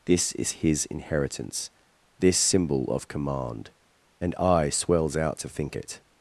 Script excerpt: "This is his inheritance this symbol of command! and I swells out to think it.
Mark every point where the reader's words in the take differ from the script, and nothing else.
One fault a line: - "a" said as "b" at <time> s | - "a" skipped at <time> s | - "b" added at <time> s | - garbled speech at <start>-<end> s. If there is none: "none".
none